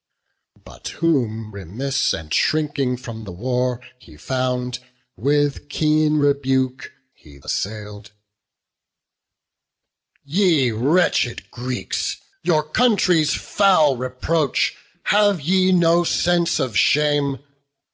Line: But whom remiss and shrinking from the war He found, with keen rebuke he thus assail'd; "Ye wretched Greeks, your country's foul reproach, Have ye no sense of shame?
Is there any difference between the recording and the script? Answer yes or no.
yes